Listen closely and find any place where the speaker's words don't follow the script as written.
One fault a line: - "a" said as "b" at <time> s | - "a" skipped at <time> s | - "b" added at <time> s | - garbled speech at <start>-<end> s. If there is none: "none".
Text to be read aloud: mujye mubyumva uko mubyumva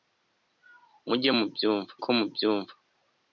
none